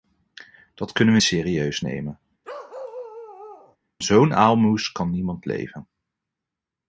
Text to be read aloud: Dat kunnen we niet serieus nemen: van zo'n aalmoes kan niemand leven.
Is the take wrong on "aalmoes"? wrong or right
right